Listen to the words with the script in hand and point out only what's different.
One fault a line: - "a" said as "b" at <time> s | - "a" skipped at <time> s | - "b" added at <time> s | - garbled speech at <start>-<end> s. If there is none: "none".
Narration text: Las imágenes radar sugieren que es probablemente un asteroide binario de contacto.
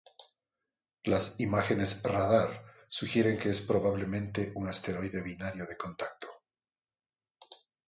none